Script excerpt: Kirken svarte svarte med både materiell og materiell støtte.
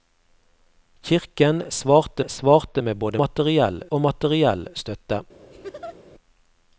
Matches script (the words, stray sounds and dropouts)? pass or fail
fail